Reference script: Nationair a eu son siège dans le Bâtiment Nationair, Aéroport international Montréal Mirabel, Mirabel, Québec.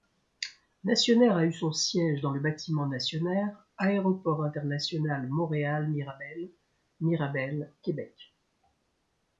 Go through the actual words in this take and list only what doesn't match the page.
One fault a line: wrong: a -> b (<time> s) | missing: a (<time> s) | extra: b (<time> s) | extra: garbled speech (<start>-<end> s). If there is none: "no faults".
no faults